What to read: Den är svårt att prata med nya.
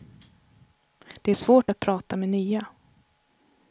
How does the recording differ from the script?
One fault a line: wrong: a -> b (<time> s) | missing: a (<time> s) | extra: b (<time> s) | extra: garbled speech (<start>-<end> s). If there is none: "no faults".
wrong: Den -> Det (1.2 s)